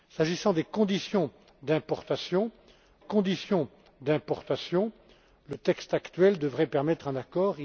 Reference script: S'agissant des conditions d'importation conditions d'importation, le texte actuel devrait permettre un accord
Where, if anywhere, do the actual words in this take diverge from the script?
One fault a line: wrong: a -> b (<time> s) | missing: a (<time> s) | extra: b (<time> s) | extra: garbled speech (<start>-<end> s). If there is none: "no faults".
no faults